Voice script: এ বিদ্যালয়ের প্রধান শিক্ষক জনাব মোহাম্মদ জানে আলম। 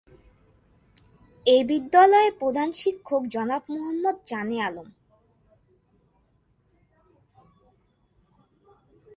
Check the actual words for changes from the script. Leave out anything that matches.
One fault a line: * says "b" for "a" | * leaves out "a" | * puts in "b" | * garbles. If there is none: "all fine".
all fine